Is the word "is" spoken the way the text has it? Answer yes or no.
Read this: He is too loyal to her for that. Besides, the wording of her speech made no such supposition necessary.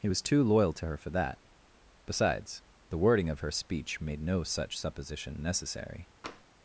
no